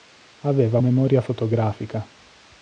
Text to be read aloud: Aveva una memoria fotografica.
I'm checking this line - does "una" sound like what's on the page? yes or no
no